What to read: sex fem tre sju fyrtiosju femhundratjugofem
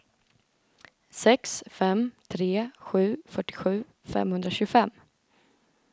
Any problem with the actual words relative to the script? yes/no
no